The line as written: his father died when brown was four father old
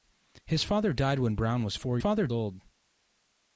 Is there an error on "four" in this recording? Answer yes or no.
no